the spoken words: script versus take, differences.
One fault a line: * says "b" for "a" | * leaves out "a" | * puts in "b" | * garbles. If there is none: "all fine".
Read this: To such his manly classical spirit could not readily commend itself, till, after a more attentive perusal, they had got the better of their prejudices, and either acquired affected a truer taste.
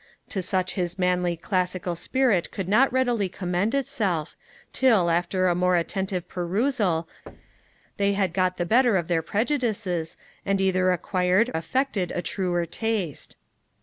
all fine